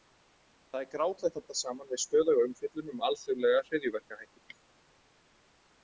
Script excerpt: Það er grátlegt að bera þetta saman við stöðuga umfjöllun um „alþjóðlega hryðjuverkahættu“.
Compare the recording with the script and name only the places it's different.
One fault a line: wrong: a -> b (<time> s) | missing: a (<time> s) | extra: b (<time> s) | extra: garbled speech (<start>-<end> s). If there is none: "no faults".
missing: bera (1.4 s)